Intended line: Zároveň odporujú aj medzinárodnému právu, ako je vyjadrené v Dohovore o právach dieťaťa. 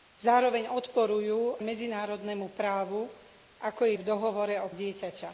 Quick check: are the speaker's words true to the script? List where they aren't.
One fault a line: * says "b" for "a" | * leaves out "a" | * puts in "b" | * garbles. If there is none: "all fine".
* leaves out "aj"
* leaves out "vyjadrené"
* leaves out "právach"